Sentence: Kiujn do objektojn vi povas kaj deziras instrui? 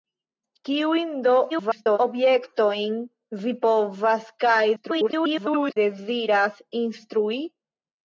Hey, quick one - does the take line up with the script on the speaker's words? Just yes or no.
no